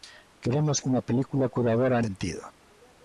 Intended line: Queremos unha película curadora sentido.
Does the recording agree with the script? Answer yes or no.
yes